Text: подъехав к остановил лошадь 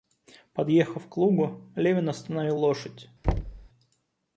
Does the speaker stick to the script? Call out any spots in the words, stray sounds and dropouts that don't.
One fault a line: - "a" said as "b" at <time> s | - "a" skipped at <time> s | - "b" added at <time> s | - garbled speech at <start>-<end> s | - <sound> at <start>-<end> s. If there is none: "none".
- "лугу левин" added at 1.2 s
- thud at 3.2-3.7 s